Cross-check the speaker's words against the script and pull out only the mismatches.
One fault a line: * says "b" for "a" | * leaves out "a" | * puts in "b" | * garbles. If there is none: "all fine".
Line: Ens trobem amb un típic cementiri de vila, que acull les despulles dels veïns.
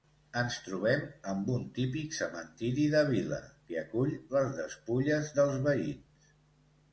all fine